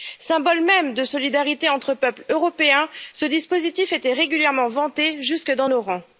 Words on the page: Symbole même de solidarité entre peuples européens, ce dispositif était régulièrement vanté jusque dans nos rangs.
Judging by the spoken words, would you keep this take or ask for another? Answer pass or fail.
pass